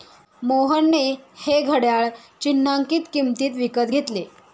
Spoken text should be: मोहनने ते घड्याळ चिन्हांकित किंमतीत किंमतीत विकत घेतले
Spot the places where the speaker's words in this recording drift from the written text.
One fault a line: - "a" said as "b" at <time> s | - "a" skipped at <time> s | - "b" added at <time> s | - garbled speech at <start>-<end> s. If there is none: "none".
- "ते" said as "हे" at 1.4 s
- "किंमतीत" skipped at 3.5 s